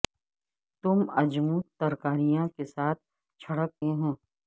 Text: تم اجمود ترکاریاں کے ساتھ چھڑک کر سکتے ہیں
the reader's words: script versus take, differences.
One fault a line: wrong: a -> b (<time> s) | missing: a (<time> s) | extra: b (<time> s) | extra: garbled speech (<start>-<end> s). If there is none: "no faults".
missing: کر سکتے (3.7 s)